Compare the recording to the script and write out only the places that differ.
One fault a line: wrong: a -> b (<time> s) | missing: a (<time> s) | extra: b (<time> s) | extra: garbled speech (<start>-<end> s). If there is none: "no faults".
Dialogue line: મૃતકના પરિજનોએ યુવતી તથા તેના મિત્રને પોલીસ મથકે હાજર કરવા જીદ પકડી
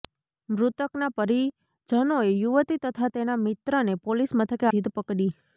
missing: હાજર કરવા (4.7 s)